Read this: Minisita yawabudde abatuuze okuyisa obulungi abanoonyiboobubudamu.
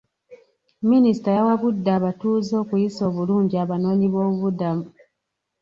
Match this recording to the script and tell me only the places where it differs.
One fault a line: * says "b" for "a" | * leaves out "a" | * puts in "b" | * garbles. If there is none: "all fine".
all fine